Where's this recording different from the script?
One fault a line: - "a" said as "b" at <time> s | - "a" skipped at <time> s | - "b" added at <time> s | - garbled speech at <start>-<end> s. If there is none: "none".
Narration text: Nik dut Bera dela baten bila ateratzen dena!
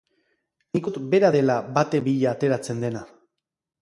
none